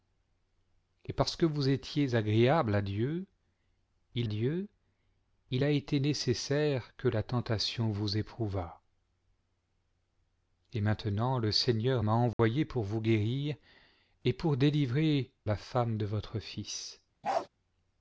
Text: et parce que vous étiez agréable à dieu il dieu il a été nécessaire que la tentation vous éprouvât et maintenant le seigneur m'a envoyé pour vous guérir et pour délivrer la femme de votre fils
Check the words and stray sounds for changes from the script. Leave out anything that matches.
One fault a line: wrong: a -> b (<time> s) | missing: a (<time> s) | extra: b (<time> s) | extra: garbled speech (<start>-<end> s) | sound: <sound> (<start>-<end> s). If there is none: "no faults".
sound: dropout (12.3-12.4 s)
sound: bark (17.2-17.5 s)